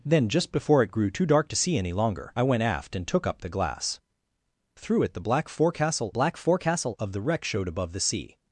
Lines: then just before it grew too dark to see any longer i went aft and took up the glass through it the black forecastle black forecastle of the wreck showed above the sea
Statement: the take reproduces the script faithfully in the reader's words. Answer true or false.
true